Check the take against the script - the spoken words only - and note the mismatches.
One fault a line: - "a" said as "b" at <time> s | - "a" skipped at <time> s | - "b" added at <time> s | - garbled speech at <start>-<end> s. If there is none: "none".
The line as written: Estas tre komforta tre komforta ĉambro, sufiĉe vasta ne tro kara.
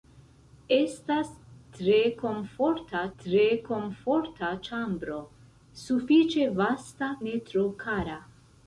none